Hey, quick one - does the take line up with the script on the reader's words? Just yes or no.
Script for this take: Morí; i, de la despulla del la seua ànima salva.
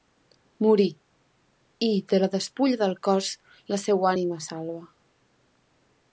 no